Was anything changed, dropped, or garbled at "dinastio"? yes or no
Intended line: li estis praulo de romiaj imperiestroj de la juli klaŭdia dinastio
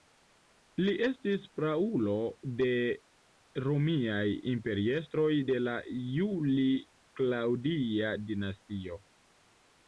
no